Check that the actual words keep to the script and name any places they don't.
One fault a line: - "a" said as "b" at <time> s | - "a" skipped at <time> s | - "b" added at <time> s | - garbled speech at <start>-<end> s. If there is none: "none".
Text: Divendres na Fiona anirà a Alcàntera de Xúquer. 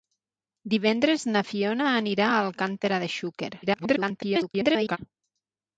- garbled speech at 3.6-5.0 s